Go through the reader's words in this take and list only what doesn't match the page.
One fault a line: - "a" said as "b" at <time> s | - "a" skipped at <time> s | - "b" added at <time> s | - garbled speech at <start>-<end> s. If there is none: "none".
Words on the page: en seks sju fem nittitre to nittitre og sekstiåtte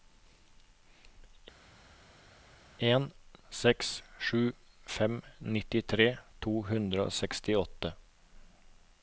- "nittitre" said as "hundre" at 6.7 s